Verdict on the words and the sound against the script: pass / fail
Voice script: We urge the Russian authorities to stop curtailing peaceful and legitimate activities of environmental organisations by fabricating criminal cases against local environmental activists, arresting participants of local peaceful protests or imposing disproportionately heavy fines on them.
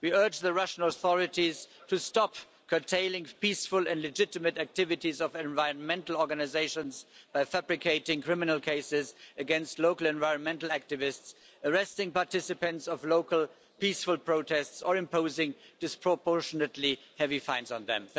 pass